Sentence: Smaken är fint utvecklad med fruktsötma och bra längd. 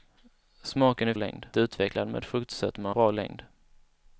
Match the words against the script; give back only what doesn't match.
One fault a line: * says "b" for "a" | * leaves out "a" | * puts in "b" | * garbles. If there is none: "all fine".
* says "längd" for "fint"
* leaves out "och"